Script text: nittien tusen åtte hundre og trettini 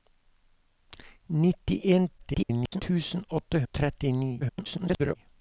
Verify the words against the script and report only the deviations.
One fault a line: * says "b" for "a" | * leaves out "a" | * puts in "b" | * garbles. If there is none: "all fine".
* garbles
* leaves out "hundre"
* garbles